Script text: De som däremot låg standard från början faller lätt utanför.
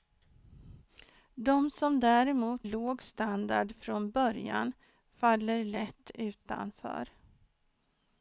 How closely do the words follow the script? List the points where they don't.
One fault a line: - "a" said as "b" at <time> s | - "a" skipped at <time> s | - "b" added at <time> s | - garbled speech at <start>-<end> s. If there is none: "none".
none